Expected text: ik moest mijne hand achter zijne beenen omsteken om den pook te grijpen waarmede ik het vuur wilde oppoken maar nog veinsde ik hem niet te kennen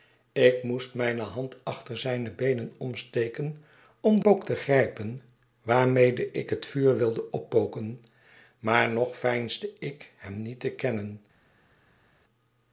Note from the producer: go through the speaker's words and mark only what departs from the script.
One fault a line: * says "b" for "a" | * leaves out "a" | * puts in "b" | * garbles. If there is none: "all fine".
* leaves out "den"